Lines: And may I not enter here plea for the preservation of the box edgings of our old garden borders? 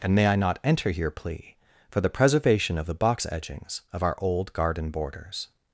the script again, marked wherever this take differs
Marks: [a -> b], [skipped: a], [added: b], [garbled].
And may I not enter here plea for the preservation of the box edgings of our old garden borders?